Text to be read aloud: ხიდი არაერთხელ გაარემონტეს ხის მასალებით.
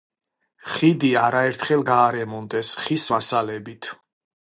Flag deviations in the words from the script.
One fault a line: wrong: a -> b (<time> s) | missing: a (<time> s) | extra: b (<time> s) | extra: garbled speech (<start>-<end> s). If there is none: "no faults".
no faults